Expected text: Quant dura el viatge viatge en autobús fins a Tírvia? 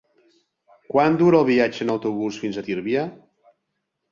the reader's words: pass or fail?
fail